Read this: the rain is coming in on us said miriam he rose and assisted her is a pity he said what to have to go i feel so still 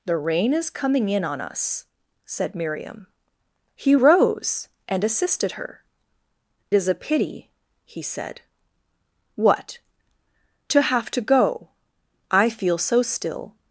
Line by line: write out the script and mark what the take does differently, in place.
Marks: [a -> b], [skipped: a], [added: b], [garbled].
the rain is coming in on us said miriam he rose and assisted her is a pity he said what to have to go i feel so still